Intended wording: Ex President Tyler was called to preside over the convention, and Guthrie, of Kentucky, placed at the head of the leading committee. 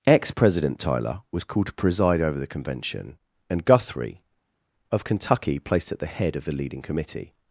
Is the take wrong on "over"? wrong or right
right